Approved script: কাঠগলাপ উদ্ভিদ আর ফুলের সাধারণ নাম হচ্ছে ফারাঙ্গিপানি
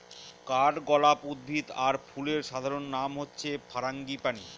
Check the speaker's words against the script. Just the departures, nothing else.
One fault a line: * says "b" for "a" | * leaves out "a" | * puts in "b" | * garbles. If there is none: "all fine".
all fine